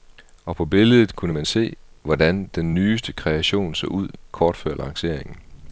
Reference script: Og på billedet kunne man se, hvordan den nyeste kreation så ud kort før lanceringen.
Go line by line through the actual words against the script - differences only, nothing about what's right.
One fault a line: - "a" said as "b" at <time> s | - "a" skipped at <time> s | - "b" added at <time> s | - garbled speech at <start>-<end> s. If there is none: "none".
none